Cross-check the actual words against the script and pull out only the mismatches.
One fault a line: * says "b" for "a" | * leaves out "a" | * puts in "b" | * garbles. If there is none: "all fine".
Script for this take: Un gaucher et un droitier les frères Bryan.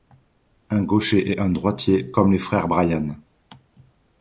* puts in "comme"